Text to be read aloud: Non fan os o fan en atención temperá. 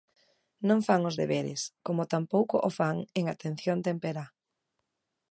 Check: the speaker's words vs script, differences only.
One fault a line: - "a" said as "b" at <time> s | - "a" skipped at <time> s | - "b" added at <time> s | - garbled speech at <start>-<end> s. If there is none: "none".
- "deberes como tampouco" added at 1.2 s